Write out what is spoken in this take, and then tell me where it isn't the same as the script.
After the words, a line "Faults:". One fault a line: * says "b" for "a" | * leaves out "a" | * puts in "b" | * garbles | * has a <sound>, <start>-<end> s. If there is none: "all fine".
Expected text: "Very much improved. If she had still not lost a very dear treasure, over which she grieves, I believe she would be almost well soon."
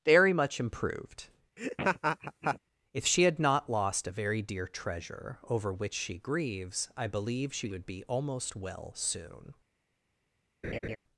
"Very much improved. If she had not lost a very dear treasure, over which she grieves, I believe she would be almost well soon."
Faults:
* has a laugh, 1.6-2.6 s
* leaves out "still"
* has a laugh, 10.6-11.0 s